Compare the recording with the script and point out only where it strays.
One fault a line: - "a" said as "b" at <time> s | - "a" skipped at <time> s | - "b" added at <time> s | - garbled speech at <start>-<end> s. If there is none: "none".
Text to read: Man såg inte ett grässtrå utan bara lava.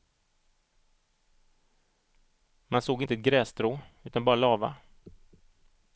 none